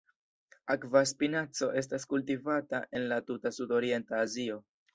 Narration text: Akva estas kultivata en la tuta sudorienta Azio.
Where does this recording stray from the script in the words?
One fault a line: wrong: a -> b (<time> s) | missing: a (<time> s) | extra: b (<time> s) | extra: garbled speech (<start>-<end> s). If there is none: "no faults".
extra: spinaco (1.1 s)